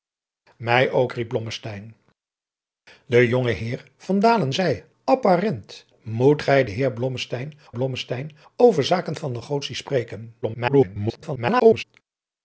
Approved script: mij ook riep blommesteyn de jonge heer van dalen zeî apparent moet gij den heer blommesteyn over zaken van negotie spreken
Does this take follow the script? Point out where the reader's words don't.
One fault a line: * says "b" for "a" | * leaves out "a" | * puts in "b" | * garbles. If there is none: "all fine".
* puts in "blommesteyn"
* garbles